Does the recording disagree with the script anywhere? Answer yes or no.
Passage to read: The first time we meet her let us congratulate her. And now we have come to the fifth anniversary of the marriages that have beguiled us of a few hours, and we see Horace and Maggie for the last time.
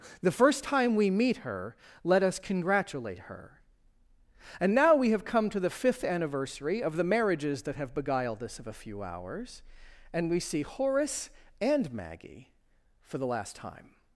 no